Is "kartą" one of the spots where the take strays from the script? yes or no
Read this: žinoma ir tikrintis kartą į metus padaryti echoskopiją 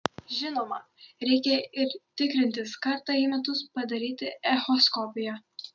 no